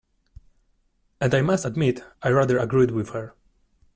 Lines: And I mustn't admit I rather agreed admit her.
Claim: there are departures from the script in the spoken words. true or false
true